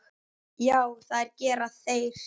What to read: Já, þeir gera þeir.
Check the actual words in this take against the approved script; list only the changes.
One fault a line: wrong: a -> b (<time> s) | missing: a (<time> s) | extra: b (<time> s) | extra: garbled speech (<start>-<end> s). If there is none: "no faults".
wrong: þeir -> það (1.1 s)